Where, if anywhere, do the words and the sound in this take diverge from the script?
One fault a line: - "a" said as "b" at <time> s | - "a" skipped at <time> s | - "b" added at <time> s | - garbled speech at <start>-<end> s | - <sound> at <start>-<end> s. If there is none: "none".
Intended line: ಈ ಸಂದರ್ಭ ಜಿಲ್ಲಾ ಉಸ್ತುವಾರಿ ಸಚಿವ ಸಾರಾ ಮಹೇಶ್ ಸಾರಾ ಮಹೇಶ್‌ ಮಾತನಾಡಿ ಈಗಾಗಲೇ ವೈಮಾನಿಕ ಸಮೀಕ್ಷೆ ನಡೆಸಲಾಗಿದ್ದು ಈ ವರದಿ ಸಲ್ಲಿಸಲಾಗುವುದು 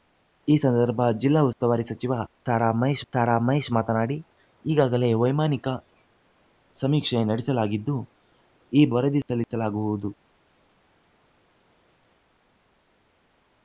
none